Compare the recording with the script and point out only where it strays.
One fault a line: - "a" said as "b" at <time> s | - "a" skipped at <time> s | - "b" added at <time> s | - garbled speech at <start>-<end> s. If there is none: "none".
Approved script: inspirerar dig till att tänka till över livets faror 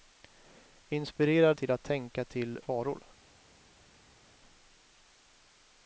- "dig" skipped at 1.6 s
- "över livets" skipped at 2.6 s